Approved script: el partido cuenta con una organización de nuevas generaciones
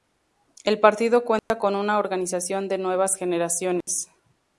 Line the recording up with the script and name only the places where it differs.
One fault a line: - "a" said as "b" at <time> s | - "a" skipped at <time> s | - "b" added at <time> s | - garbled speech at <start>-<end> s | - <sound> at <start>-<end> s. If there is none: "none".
- dropout at 1.4-1.5 s
- dropout at 3.8-3.9 s